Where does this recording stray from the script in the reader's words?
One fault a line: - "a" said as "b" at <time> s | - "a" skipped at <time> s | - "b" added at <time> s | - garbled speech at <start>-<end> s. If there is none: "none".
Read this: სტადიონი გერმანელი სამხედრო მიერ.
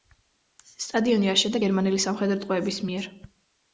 - "აშენდა" added at 1.4 s
- "ტყვეების" added at 2.4 s